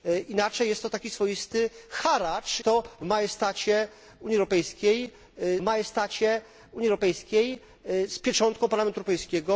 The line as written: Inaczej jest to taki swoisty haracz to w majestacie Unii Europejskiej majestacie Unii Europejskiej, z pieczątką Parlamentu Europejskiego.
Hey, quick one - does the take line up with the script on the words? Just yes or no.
yes